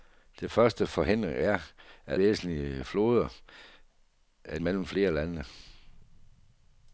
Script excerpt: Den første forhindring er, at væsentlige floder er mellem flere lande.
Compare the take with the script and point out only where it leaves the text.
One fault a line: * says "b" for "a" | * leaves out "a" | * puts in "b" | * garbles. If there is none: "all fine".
all fine